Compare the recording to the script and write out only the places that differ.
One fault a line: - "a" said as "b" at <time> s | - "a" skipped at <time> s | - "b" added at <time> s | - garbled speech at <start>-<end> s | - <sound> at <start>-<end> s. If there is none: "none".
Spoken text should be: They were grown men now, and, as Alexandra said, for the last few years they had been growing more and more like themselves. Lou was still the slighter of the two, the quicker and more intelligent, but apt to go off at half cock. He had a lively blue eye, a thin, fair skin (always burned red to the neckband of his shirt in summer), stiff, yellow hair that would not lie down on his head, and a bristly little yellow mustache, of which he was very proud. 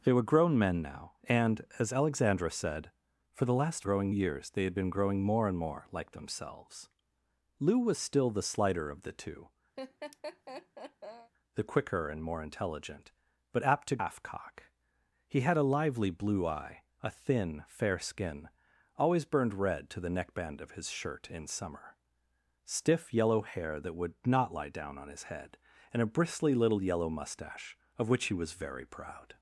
- "few" said as "growing" at 3.8 s
- laugh at 9.8-11.3 s
- "go off at" skipped at 14.0 s